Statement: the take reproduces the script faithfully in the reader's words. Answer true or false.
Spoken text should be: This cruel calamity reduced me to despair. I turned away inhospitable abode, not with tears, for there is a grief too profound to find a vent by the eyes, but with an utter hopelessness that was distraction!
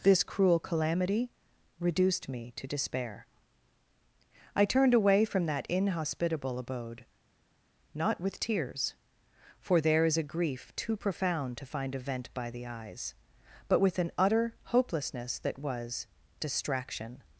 false